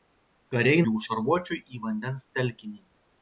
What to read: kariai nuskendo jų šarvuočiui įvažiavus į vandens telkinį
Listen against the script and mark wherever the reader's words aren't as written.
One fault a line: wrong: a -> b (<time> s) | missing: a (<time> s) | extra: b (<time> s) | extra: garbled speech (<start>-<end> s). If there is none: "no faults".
missing: nuskendo (0.8 s)
missing: įvažiavus (1.6 s)